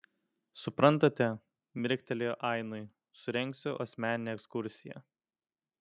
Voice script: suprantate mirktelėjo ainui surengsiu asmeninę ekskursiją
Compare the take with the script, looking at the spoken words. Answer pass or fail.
pass